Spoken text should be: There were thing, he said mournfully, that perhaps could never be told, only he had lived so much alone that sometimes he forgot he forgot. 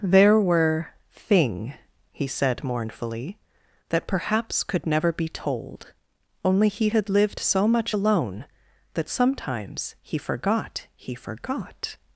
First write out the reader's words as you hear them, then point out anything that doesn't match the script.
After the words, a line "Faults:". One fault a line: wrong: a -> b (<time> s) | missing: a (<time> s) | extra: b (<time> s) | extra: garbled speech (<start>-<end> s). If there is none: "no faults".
There were thing, he said mournfully, that perhaps could never be told, only he had lived so much alone that sometimes he forgot he forgot.
Faults:
no faults